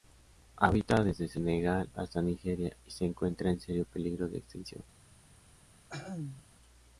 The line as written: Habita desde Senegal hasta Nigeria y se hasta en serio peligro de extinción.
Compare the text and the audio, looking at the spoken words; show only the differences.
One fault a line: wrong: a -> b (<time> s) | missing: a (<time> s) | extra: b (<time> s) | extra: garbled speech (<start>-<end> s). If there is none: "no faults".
wrong: hasta -> encuentra (3.0 s)